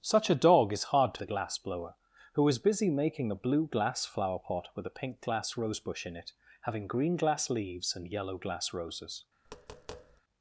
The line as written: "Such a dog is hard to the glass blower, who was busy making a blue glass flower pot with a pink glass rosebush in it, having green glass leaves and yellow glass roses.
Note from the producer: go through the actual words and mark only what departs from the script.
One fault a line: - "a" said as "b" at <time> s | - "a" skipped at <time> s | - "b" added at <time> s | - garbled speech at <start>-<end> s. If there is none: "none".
none